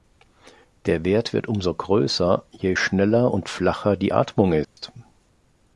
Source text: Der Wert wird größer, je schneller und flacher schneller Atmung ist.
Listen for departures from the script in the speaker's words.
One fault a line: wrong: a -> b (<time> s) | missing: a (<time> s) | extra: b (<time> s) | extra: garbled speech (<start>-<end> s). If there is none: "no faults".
extra: umso (1.5 s)
wrong: schneller -> die (4.0 s)